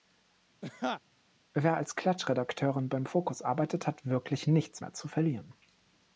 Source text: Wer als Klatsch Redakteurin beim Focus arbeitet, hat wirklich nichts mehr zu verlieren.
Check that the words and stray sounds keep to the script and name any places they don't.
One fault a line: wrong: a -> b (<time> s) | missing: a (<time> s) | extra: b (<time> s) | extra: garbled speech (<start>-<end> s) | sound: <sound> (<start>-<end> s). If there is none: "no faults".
sound: laugh (0.6-1.0 s)